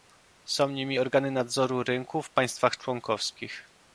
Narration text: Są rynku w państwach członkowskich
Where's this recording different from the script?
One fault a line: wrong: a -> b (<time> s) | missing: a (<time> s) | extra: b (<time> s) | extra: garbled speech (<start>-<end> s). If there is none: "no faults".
extra: nimi organy nadzoru (0.7 s)